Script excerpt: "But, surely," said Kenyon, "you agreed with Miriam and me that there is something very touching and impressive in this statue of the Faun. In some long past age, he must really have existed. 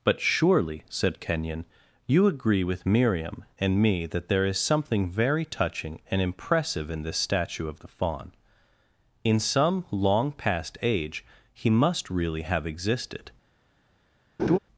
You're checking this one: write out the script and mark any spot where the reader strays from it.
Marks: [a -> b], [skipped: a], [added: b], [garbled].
"But, surely," said Kenyon, "you [agreed -> agree] with Miriam and me that there is something very touching and impressive in this statue of the Faun. In some long past age, he must really have existed.